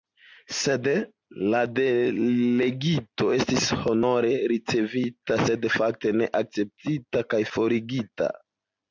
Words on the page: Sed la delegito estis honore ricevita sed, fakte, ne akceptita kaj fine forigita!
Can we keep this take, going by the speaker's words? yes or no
no